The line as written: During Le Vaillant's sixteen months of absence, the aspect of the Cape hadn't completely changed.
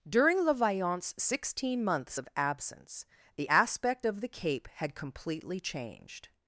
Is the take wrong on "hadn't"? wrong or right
wrong